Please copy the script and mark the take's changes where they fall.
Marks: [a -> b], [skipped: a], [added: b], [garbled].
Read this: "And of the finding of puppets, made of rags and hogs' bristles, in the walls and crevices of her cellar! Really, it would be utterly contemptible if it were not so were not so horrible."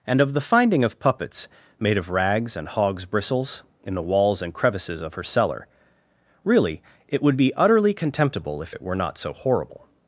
"And of the finding of puppets, made of rags and hogs' bristles, in the walls and crevices of her cellar! Really, it would be utterly contemptible if it were not so [skipped: were not so] horrible."